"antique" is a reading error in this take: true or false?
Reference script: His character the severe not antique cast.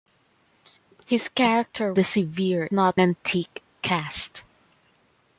false